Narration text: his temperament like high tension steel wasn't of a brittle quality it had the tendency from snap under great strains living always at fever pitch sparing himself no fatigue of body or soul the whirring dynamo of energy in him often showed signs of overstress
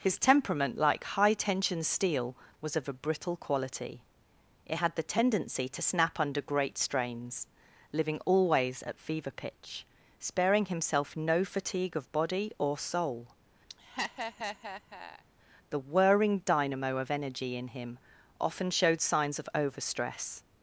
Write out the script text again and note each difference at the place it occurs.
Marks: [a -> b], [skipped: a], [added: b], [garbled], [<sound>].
his temperament like high tension steel [wasn't -> was] of a brittle quality it had the tendency [from -> to] snap under great strains living always at fever pitch sparing himself no fatigue of body or soul [laugh] the whirring dynamo of energy in him often showed signs of overstress